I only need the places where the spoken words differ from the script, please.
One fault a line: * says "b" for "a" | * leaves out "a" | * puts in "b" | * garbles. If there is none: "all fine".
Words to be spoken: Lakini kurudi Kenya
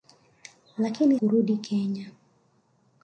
all fine